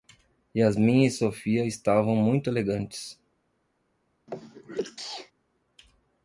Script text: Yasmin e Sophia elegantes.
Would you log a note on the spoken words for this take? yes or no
yes